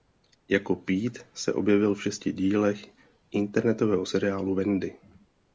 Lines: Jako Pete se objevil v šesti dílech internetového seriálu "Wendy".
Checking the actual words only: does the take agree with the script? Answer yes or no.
yes